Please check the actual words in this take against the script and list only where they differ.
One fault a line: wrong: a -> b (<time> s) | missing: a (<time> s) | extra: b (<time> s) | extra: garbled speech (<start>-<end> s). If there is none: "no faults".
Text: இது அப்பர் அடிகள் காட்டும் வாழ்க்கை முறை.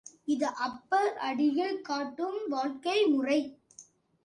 no faults